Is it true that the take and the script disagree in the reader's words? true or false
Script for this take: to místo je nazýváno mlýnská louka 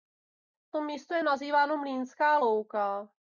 false